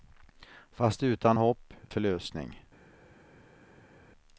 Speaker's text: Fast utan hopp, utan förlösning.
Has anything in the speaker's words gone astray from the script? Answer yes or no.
yes